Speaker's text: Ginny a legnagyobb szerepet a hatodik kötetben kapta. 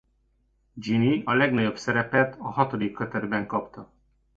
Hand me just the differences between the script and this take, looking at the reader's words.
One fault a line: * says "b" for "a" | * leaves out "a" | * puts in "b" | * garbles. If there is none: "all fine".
all fine